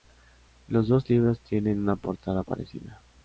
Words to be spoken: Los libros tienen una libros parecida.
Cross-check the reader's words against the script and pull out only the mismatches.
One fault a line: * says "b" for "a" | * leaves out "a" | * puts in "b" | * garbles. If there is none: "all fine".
* puts in "dos"
* says "portada" for "libros"